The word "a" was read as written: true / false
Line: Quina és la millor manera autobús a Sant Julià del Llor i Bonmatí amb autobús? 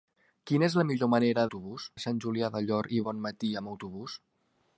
true